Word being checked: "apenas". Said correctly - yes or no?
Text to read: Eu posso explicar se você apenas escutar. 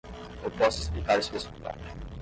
no